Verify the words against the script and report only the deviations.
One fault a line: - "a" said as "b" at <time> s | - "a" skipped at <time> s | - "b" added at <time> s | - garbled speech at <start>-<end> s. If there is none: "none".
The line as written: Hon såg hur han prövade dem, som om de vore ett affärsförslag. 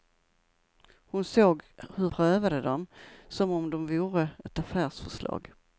- "han" skipped at 2.1 s